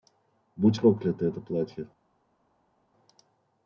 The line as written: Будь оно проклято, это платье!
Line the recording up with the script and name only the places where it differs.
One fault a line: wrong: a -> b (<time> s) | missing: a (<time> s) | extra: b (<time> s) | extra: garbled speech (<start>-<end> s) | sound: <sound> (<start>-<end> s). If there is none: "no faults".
missing: оно (0.8 s)